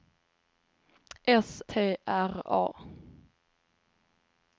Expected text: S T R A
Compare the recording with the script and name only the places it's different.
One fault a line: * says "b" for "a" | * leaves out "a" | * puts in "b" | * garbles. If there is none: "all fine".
all fine